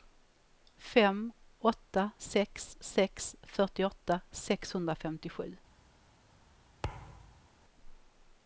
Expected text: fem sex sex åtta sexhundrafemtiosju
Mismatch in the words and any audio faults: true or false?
true